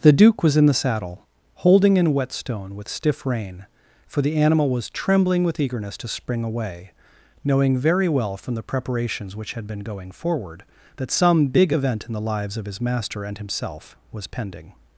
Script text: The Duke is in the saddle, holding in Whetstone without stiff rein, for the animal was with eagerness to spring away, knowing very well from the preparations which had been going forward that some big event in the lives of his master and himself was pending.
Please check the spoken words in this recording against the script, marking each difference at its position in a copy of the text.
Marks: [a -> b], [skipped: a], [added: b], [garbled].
The Duke [is -> was] in the saddle, holding in Whetstone [without -> with] stiff rein, for the animal was [added: trembling] with eagerness to spring away, knowing very well from the preparations which had been going forward that some big event in the lives of his master and himself was pending.